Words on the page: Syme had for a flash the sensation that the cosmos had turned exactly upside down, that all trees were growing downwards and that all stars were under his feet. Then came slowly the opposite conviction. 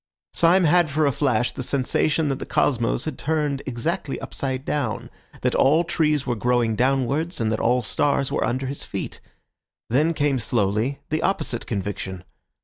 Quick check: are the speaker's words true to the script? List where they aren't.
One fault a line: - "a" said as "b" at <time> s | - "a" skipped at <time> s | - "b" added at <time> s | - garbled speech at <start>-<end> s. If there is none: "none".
none